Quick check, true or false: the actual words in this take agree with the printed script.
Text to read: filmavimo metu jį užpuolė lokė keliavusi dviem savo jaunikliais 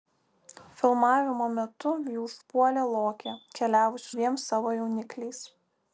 true